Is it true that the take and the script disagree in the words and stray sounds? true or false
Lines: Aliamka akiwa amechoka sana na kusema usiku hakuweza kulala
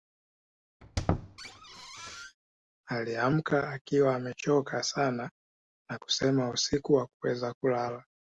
true